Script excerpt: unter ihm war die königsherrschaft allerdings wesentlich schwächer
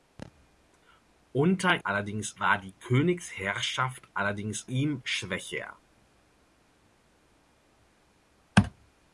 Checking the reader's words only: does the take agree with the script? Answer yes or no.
no